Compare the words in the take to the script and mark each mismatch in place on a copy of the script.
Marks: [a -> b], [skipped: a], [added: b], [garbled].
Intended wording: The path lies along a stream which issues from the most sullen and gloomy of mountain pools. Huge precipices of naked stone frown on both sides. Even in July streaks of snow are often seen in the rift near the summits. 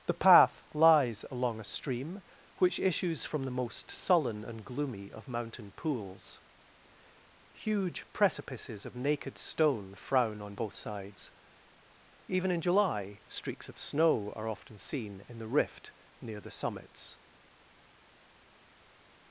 The path lies along a stream which issues from the most sullen and gloomy of mountain pools. Huge precipices of naked stone frown on both sides. Even in July streaks of snow are often seen in the rift near the summits.